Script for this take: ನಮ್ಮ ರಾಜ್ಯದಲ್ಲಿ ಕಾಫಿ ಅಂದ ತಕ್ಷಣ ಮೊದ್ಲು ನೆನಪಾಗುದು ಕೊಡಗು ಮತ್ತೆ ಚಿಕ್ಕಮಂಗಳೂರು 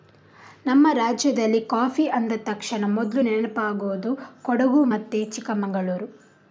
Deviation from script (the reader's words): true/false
false